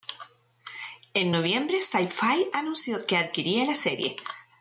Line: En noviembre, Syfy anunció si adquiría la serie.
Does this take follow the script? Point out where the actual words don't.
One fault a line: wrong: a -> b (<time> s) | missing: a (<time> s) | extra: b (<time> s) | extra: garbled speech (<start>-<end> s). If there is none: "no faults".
wrong: si -> que (3.1 s)